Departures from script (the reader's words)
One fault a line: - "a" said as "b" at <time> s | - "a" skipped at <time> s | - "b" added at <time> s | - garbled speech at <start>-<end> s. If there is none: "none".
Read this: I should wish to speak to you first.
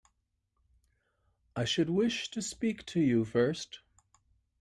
none